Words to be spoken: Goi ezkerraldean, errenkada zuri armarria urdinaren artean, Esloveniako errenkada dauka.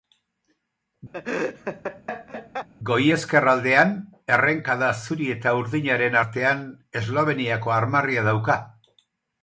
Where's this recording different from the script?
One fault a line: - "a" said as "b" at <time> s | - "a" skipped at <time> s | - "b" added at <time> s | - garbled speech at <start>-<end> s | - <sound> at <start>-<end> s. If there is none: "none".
- laugh at 1.1-2.7 s
- "armarria" said as "eta" at 5.4 s
- "errenkada" said as "armarria" at 7.8 s